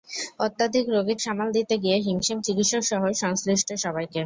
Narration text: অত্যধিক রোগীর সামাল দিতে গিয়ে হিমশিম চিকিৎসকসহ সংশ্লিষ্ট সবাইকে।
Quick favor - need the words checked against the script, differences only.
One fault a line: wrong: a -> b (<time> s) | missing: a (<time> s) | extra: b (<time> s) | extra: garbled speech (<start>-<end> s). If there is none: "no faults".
no faults